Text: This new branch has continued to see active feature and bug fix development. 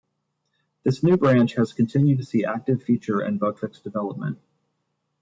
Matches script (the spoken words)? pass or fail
pass